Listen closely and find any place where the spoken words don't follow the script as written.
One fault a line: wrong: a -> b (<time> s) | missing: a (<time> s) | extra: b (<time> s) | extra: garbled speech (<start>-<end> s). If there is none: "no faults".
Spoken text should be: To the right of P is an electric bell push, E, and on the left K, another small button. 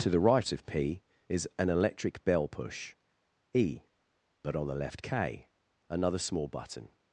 wrong: and -> but (4.4 s)